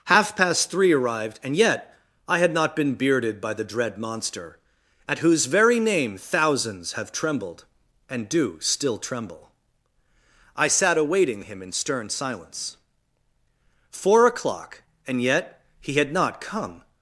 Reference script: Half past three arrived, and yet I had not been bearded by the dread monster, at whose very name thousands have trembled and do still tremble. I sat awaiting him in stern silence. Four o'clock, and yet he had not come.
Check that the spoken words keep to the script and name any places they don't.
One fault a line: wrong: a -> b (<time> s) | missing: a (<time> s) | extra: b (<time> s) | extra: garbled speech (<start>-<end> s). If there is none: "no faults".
no faults